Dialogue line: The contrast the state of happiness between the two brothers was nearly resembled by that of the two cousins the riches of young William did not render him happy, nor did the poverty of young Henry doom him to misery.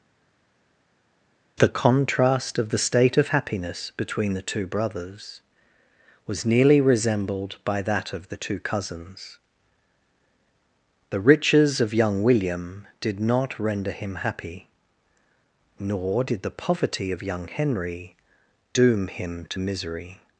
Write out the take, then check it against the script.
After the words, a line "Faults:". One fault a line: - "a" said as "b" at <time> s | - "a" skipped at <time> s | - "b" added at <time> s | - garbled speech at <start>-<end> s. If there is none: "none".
The contrast of the state of happiness between the two brothers was nearly resembled by that of the two cousins the riches of young William did not render him happy, nor did the poverty of young Henry doom him to misery.
Faults:
- "of" added at 2.6 s